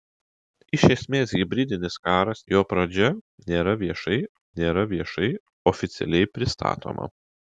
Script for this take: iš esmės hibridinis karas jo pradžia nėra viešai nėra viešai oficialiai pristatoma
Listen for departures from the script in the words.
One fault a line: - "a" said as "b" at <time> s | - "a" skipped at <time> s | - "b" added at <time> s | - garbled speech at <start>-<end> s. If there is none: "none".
none